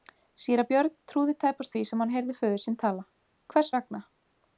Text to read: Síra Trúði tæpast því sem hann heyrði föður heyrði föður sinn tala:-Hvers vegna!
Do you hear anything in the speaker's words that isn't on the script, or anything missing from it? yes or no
yes